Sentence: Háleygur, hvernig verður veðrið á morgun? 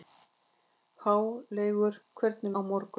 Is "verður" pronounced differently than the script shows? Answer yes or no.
yes